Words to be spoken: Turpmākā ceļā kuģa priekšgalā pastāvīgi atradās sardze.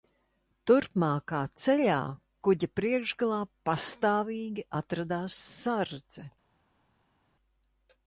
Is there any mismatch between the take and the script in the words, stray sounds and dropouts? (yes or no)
no